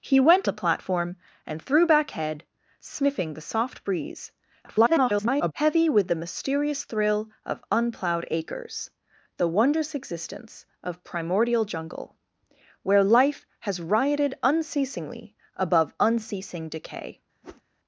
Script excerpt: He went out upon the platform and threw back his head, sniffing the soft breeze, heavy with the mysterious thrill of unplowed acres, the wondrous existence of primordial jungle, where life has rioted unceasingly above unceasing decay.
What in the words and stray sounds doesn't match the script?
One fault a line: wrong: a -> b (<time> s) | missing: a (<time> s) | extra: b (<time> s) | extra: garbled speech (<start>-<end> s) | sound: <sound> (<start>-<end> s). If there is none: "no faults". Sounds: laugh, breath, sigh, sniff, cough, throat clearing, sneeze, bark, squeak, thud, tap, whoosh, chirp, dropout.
missing: out upon (0.5 s)
missing: his (2.1 s)
extra: garbled speech (4.6-5.5 s)
sound: whoosh (17.4-17.6 s)